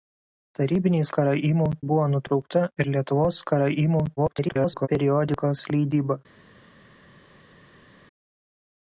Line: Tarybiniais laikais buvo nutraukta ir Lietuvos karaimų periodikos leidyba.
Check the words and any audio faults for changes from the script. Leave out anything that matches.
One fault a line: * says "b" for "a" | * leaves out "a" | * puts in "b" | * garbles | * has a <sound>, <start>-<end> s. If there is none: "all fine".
* says "karaimų" for "laikais"
* garbles